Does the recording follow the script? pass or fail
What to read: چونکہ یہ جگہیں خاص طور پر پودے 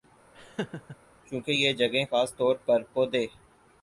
pass